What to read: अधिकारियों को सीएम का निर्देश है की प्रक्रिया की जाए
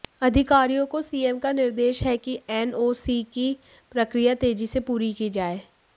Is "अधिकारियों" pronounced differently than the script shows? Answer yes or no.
no